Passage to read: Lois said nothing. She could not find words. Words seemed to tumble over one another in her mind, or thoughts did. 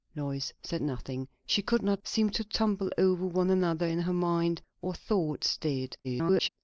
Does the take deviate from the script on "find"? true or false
true